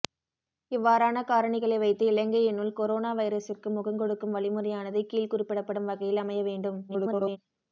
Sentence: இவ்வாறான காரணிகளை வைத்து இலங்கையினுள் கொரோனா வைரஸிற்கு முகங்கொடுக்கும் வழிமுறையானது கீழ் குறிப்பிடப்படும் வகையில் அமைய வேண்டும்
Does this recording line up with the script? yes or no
no